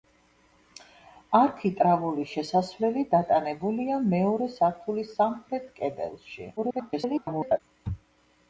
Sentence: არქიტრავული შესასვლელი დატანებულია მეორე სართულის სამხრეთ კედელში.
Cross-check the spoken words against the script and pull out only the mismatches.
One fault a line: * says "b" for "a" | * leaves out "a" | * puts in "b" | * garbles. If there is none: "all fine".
* garbles